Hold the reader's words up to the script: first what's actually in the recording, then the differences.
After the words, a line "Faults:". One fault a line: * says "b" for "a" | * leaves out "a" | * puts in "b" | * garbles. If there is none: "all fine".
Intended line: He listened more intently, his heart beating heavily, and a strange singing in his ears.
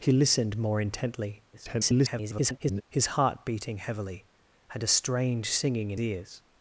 He listened more intently, [garbled] his heart beating heavily, and a strange singing in ears.
Faults:
* garbles
* leaves out "his"